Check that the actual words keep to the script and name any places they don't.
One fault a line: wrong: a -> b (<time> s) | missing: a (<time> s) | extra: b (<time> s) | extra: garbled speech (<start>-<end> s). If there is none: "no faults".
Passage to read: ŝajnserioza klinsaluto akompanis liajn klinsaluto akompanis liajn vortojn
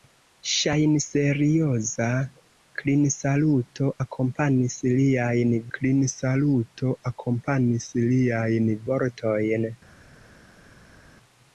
no faults